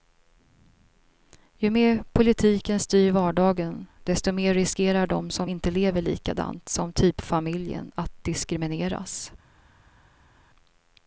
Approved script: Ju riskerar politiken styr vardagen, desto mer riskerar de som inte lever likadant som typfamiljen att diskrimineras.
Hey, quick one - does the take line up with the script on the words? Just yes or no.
no